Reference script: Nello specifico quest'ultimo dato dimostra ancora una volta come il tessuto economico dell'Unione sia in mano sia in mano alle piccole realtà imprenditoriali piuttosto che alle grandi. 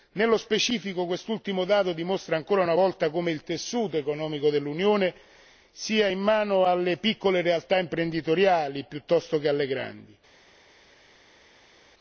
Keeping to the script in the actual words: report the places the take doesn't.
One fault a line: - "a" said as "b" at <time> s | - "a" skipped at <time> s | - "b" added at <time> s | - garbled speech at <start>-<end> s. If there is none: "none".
- "sia in mano" skipped at 6.6 s